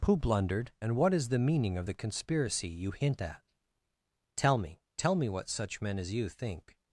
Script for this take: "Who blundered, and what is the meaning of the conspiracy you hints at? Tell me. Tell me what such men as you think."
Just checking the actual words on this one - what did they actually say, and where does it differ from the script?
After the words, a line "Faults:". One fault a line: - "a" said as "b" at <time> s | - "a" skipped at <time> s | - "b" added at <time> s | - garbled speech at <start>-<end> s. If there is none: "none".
"Who blundered, and what is the meaning of the conspiracy you hint at? Tell me. Tell me what such men as you think."
Faults:
- "hints" said as "hint" at 2.9 s